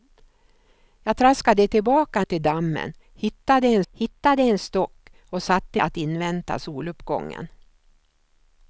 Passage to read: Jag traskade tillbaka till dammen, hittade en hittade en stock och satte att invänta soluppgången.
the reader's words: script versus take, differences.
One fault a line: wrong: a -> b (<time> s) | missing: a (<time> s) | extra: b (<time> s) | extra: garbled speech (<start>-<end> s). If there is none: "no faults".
no faults